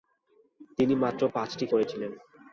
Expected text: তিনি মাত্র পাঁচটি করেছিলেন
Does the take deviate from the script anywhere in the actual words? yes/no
no